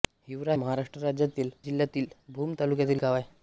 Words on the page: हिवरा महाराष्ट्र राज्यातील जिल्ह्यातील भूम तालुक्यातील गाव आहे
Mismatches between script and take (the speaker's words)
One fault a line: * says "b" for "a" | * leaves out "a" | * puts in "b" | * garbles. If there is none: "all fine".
all fine